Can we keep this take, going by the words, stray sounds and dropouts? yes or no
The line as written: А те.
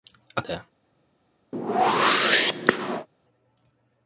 no